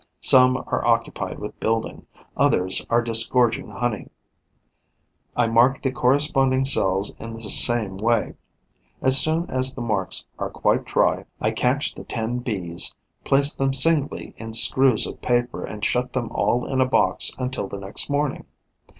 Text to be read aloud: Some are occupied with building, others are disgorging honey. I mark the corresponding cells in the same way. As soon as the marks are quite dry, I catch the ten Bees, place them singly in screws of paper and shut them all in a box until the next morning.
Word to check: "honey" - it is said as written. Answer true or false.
true